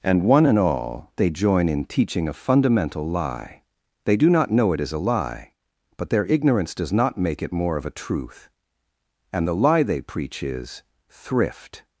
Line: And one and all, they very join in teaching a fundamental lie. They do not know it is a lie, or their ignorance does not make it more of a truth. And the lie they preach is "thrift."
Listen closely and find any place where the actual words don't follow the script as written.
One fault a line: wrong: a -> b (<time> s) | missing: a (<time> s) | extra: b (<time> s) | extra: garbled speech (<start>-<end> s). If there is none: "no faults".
missing: very (1.3 s)
wrong: or -> but (6.0 s)